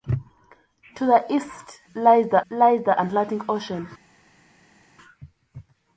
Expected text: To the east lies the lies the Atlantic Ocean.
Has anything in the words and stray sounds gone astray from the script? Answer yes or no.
no